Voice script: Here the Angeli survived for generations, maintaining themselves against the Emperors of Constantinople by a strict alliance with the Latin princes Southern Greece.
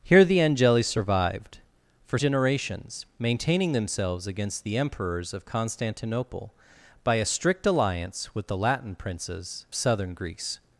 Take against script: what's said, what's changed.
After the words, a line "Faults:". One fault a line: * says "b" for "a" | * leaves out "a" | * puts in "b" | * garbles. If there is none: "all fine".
Here the Angeli survived for generations, maintaining themselves against the Emperors of Constantinople by a strict alliance with the Latin princes Southern Greece.
Faults:
all fine